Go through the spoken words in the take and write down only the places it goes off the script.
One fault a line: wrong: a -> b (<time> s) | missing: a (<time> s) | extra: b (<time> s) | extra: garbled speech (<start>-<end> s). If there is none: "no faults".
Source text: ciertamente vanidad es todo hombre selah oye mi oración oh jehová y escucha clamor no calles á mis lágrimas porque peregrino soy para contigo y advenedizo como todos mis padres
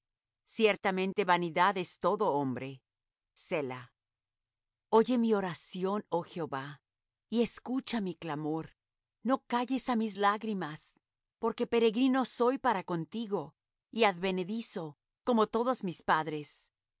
extra: mi (8.0 s)